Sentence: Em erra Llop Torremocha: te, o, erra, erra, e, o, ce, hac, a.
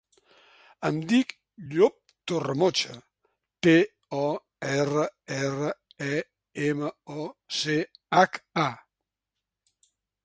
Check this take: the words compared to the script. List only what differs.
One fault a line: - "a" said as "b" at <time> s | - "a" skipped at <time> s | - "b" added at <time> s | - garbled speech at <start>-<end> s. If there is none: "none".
- "erra" said as "dic" at 1.1 s
- "ema" added at 6.7 s